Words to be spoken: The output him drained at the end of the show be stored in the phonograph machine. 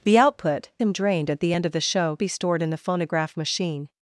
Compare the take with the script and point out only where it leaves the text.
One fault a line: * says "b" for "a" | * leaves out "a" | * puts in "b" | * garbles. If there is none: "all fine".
all fine